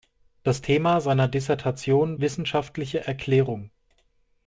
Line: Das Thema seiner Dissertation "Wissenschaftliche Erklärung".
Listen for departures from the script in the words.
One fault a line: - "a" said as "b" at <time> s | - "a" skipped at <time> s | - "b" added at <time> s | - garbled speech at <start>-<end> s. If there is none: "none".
none